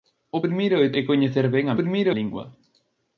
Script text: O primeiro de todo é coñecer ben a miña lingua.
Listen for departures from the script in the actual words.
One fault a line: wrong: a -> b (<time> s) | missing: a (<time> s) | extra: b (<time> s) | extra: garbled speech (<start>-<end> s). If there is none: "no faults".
missing: todo (0.9 s)
wrong: miña -> primeiro (1.8 s)